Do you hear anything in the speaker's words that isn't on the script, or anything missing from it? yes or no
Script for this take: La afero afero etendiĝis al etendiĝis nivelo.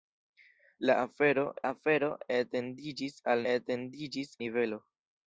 no